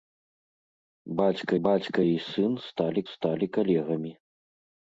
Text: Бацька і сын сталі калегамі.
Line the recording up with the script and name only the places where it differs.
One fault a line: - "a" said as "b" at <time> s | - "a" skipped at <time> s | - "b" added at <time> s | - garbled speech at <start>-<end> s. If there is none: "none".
- "бацька" added at 1.7 s
- "сталі" added at 3.1 s